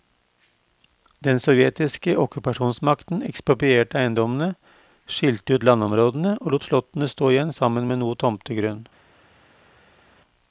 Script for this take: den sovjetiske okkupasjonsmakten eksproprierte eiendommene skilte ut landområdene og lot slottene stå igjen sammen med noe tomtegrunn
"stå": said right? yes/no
yes